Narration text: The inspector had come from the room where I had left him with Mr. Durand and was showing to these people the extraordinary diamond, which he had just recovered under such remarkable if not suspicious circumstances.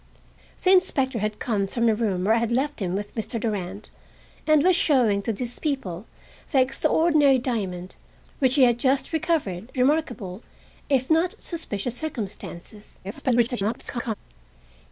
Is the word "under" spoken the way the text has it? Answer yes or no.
no